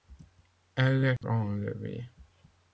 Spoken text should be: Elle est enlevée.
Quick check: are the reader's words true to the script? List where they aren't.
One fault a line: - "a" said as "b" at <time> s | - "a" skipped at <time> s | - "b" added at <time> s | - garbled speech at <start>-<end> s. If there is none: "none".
none